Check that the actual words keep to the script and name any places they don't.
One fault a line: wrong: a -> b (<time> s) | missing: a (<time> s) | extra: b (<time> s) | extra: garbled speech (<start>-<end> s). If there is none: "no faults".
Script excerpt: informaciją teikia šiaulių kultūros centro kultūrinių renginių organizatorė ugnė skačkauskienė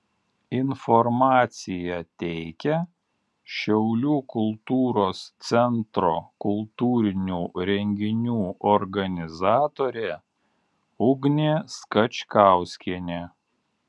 no faults